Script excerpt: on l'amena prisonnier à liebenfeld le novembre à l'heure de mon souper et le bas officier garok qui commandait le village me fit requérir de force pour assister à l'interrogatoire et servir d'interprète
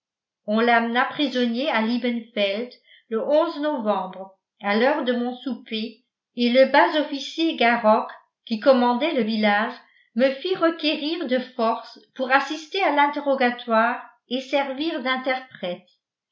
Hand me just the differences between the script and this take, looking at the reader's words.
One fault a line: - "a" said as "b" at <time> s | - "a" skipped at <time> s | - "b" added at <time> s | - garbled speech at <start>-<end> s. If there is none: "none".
none